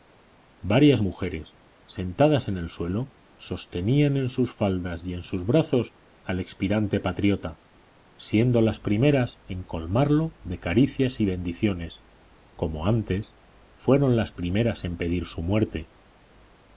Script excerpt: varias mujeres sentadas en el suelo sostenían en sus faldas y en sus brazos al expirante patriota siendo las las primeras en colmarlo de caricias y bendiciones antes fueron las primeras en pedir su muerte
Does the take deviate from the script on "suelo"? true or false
false